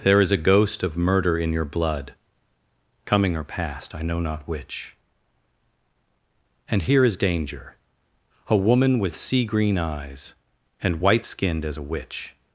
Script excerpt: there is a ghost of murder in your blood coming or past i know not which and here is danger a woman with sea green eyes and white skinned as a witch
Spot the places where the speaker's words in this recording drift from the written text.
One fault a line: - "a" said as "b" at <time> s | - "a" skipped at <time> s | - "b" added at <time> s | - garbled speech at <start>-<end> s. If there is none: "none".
none